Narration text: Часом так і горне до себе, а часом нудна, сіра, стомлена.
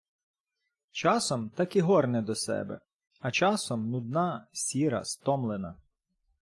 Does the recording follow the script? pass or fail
pass